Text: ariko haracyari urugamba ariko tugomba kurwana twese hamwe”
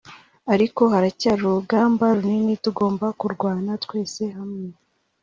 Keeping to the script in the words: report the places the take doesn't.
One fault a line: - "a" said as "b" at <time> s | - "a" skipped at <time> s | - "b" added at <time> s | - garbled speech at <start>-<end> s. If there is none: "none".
- "ariko" said as "runini" at 2.2 s